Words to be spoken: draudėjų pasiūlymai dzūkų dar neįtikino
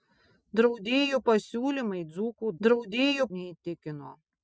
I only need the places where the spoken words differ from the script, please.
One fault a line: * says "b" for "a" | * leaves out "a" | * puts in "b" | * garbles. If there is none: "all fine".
* says "draudėjų" for "dar"